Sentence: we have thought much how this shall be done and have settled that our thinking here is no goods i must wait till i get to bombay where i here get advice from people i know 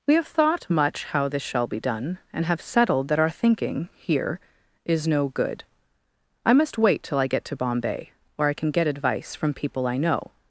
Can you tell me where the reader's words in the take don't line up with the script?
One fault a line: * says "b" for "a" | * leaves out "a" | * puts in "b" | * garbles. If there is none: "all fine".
* says "good" for "goods"
* says "can" for "here"